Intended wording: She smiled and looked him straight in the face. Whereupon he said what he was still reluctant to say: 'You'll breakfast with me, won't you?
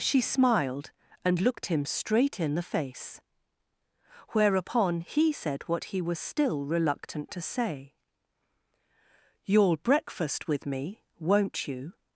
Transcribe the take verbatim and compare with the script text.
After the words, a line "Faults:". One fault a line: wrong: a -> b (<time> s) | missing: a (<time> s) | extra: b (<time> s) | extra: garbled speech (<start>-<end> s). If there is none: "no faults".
She smiled and looked him straight in the face. Whereupon he said what he was still reluctant to say: 'You'll breakfast with me, won't you?
Faults:
no faults